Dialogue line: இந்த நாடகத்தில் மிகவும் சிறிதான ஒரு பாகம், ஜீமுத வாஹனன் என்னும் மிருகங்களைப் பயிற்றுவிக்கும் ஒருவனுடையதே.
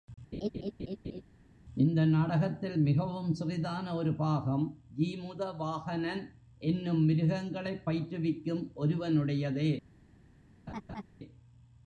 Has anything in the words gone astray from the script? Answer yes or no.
no